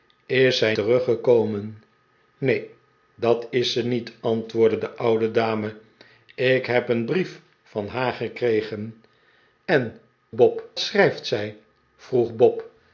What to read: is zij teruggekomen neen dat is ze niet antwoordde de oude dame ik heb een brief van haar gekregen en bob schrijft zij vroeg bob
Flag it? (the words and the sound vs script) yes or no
no